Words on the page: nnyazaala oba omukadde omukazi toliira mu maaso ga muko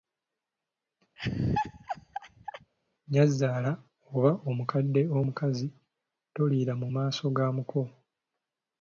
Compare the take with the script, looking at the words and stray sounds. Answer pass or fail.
fail